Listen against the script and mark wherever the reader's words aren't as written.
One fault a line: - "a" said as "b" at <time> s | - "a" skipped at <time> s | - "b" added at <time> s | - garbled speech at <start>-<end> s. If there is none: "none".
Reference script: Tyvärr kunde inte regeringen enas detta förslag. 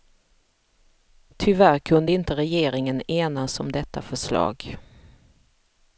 - "om" added at 3.6 s